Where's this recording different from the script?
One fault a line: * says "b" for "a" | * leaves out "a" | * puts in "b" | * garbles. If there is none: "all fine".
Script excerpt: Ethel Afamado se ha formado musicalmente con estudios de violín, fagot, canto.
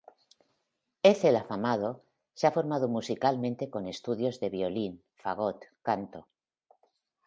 all fine